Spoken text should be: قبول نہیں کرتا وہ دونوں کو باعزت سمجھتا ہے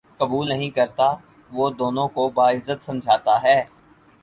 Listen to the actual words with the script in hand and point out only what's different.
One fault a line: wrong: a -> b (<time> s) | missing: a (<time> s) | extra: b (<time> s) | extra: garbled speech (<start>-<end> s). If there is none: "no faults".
no faults